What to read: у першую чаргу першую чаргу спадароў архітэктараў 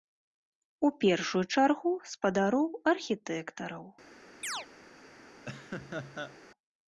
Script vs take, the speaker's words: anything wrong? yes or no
yes